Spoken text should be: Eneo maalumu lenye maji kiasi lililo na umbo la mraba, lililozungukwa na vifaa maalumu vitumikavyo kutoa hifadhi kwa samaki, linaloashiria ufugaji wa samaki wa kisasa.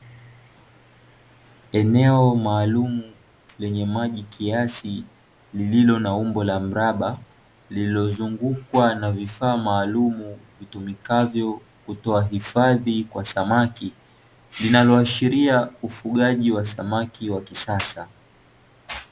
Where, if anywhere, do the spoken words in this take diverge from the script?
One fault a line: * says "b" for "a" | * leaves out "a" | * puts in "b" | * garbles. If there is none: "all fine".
all fine